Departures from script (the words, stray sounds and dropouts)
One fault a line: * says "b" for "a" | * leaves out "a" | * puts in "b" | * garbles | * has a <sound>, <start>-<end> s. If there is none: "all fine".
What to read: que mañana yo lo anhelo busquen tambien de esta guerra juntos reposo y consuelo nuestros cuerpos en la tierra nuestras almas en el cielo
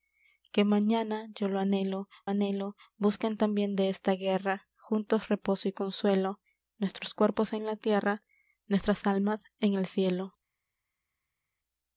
* puts in "anhelo"